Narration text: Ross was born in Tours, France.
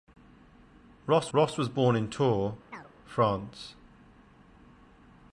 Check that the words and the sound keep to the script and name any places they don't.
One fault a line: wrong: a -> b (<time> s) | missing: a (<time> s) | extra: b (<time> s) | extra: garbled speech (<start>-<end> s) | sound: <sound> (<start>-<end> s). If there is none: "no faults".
extra: ross (1.4 s)
sound: chirp (2.7-2.9 s)